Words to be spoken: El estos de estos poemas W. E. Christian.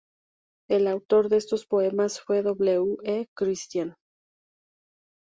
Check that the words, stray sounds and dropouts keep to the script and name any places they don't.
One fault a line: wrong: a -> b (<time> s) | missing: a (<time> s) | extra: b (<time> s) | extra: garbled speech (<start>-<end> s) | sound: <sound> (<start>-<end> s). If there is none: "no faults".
wrong: estos -> autor (0.9 s)
extra: fue (2.2 s)